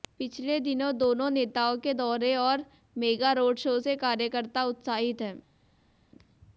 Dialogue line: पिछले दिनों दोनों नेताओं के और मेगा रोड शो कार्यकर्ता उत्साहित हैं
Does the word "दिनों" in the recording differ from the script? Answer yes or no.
no